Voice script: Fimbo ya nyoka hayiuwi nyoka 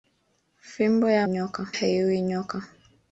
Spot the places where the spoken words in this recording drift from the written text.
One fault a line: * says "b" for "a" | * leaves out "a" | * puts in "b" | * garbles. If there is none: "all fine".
all fine